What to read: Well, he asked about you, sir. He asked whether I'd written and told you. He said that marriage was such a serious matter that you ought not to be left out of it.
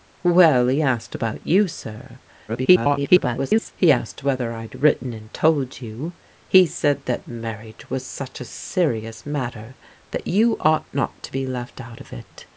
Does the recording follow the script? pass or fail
fail